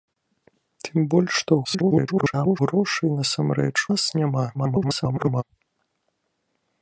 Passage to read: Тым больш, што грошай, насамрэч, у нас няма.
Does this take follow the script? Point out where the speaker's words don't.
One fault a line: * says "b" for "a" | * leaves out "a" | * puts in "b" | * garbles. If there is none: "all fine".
* garbles
* leaves out "у"
* garbles